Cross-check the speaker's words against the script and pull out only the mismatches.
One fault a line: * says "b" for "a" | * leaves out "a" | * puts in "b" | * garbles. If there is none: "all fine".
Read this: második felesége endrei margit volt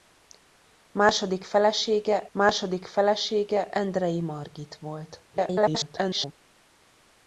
* puts in "második felesége"
* garbles